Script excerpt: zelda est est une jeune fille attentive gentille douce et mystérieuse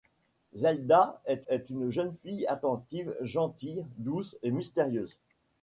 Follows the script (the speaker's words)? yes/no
yes